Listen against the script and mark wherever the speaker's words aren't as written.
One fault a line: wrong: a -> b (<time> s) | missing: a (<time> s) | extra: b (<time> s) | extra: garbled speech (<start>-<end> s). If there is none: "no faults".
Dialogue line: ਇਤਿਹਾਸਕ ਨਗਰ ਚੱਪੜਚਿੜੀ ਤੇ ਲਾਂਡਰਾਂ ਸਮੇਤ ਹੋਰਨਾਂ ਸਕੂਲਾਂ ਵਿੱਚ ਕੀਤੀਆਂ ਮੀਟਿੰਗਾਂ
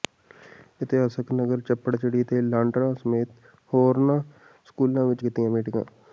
no faults